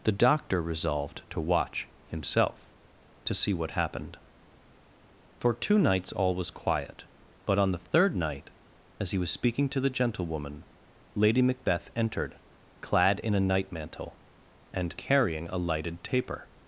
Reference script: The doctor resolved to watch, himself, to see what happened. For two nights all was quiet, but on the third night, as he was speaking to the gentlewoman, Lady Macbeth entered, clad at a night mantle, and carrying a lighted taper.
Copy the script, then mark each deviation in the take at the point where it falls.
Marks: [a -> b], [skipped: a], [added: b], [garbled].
The doctor resolved to watch, himself, to see what happened. For two nights all was quiet, but on the third night, as he was speaking to the gentlewoman, Lady Macbeth entered, clad [at -> in] a night mantle, and carrying a lighted taper.